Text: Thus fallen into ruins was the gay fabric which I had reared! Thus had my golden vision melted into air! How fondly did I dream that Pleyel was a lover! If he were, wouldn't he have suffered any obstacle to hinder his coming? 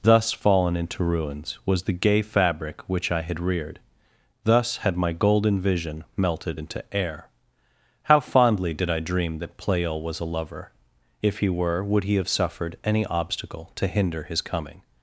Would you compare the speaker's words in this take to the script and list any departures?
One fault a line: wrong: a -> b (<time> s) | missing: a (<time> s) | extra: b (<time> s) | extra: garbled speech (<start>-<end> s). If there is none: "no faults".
wrong: wouldn't -> would (11.8 s)